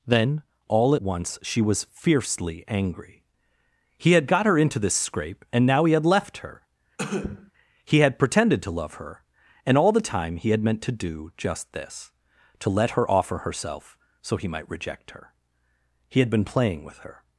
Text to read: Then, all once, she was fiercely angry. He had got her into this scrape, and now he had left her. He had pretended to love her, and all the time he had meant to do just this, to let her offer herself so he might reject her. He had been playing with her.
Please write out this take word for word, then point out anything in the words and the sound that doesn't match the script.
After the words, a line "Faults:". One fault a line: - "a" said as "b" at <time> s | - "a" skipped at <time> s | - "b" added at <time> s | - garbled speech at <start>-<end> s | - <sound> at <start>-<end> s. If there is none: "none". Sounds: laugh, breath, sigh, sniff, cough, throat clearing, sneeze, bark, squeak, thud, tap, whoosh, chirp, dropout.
Then, all once, she was fiercely angry. He had got her into this scrape, and now he had left her. He had pretended to love her, and all the time he had meant to do just this, to let her offer herself so he might reject her. He had been playing with her.
Faults:
- cough at 7.0-7.5 s